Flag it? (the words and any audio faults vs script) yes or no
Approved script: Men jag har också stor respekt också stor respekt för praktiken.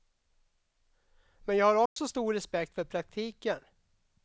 yes